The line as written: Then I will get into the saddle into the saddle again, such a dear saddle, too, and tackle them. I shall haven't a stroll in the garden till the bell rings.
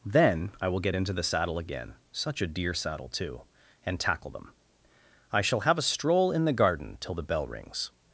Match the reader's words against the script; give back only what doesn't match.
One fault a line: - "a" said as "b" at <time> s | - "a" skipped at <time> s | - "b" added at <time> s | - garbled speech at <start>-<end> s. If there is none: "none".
- "into the saddle" skipped at 1.6 s
- "haven't" said as "have" at 5.6 s